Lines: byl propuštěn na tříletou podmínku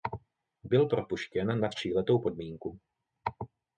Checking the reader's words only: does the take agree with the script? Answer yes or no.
yes